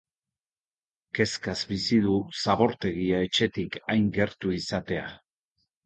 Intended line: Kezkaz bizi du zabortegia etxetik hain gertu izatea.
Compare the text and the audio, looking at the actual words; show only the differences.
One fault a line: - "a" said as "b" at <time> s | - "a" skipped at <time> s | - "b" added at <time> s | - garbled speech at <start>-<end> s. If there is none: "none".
none